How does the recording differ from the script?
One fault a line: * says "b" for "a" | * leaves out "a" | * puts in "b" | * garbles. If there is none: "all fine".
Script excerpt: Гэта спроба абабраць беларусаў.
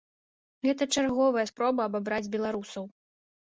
* puts in "чарговая"